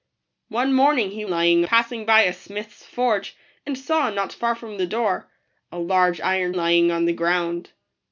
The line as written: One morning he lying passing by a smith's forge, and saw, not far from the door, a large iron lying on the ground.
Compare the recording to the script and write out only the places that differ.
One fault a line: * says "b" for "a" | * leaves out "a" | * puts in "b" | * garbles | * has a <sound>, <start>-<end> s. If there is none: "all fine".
all fine